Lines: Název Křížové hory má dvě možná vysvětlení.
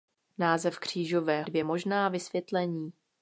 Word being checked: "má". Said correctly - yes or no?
no